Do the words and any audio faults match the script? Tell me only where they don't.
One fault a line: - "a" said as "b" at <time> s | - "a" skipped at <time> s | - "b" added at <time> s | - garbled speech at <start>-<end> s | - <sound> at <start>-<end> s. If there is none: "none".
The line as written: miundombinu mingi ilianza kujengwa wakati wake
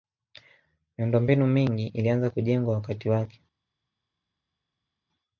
none